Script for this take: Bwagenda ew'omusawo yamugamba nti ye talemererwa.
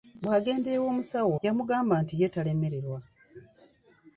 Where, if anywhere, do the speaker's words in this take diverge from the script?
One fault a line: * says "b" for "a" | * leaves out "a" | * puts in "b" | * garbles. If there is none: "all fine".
all fine